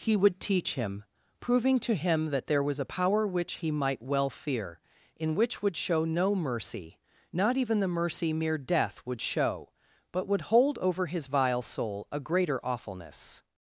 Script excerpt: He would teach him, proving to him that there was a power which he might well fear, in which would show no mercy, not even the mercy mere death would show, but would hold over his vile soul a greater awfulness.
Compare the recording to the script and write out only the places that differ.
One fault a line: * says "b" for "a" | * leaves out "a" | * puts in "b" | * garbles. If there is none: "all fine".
all fine